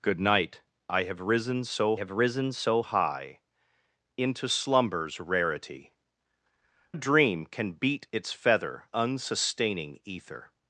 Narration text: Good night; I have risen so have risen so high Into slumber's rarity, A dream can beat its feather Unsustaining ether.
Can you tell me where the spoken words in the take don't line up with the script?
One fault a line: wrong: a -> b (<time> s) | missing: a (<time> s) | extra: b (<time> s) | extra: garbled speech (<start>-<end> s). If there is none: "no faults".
no faults